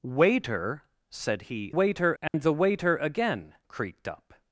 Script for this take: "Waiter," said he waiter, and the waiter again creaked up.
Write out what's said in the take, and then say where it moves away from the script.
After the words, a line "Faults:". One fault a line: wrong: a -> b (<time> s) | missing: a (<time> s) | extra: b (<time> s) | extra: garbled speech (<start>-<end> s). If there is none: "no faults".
"Waiter," said he waiter, and the waiter again creaked up.
Faults:
no faults